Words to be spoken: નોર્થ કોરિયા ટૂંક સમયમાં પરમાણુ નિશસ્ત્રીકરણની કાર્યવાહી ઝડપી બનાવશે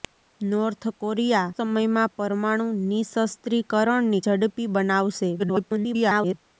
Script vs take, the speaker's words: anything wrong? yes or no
yes